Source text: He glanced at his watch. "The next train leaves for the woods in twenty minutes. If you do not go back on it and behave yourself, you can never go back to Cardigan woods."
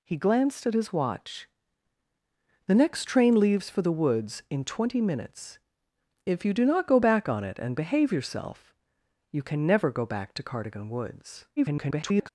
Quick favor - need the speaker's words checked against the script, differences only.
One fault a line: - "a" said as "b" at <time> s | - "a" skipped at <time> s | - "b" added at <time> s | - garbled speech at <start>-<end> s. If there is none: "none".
- garbled speech at 11.6-12.3 s